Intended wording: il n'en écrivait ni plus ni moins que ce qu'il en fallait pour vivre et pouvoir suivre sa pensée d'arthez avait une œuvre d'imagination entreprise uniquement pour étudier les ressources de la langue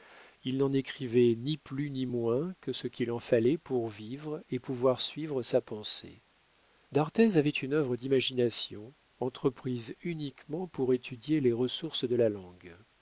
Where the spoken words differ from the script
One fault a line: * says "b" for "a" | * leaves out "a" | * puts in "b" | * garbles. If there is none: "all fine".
all fine